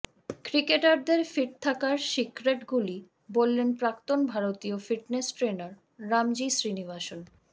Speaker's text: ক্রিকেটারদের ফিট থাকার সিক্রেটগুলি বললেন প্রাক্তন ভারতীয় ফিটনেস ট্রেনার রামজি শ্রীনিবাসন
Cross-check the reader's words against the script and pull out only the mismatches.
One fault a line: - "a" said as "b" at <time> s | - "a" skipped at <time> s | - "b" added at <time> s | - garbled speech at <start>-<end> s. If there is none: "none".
none